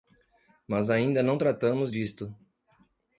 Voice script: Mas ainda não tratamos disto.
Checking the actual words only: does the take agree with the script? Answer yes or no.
yes